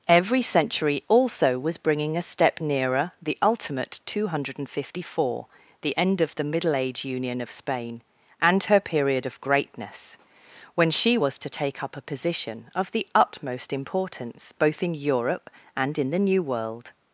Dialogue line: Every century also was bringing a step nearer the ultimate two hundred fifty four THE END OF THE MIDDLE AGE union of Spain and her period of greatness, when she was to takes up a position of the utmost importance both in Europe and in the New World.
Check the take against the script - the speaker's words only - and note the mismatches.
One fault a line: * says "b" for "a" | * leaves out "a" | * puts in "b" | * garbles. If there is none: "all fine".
* says "take" for "takes"